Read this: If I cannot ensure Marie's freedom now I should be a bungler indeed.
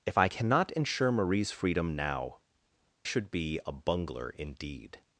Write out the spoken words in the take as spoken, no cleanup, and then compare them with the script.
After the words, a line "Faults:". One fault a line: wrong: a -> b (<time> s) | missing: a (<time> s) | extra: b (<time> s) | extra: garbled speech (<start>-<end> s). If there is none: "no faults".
If I cannot ensure Marie's freedom now should be a bungler indeed.
Faults:
missing: I (2.4 s)